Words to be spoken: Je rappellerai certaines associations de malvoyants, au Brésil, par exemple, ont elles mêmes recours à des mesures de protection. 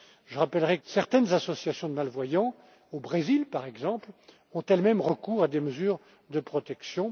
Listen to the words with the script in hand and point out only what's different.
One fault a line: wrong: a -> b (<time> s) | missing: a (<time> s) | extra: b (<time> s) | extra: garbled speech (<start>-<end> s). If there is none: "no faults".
no faults